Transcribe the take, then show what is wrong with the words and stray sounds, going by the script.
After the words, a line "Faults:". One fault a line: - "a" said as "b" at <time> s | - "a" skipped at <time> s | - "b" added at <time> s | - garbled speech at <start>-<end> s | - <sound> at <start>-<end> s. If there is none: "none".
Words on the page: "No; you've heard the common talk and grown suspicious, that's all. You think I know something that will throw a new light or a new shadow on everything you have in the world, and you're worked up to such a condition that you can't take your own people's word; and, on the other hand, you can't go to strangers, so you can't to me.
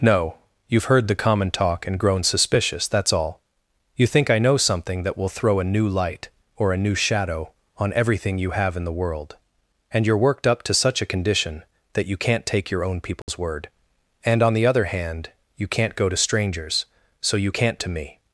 "No; you've heard the common talk and grown suspicious, that's all. You think I know something that will throw a new light or a new shadow on everything you have in the world, and you're worked up to such a condition that you can't take your own people's word; and, on the other hand, you can't go to strangers, so you can't to me.
Faults:
- dropout at 13.2-13.3 s